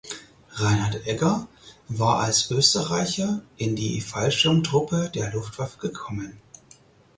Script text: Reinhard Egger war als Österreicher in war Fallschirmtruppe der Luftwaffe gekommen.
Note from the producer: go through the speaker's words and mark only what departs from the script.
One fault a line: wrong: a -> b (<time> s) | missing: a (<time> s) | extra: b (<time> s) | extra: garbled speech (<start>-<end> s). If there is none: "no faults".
wrong: war -> die (3.7 s)